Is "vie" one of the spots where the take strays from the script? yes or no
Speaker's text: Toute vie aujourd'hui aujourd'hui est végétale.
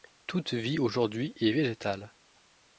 no